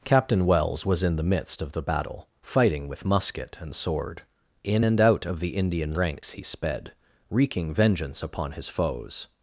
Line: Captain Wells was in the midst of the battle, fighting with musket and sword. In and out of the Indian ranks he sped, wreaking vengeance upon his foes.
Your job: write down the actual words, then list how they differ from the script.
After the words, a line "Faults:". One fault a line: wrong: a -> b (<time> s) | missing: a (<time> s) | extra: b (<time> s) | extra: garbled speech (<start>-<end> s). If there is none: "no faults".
Captain Wells was in the midst of the battle, fighting with musket and sword. In and out of the Indian ranks he sped, wreaking vengeance upon his foes.
Faults:
no faults